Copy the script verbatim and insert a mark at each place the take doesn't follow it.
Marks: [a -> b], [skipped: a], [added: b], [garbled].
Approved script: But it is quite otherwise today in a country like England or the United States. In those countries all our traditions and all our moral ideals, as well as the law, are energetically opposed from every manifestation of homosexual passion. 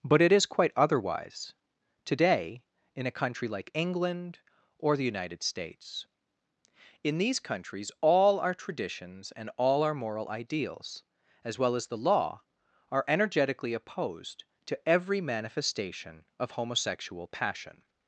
But it is quite otherwise today in a country like England or the United States. In [those -> these] countries all our traditions and all our moral ideals, as well as the law, are energetically opposed [from -> to] every manifestation of homosexual passion.